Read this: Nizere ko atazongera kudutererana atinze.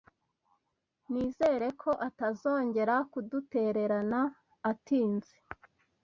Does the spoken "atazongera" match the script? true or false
true